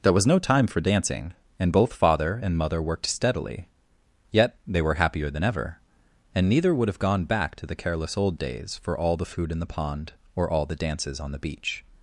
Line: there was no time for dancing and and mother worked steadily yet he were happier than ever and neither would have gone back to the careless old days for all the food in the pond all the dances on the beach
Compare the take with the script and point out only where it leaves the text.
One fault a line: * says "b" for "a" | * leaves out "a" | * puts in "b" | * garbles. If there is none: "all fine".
* puts in "both father"
* says "they" for "he"
* puts in "or"